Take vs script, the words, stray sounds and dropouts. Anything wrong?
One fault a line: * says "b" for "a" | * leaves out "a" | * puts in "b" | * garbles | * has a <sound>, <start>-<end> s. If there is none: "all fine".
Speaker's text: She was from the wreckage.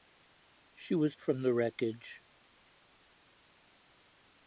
all fine